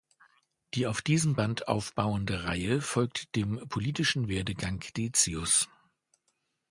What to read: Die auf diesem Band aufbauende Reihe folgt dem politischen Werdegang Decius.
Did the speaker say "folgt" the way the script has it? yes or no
yes